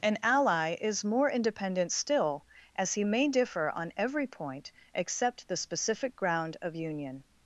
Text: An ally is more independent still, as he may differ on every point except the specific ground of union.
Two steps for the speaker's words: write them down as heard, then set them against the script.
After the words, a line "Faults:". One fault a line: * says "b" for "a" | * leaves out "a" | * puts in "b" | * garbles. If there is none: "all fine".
An ally is more independent still, as he may differ on every point except the specific ground of union.
Faults:
all fine